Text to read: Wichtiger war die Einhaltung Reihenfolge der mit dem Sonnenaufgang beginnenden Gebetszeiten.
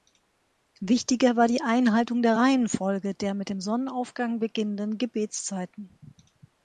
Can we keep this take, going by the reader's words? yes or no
no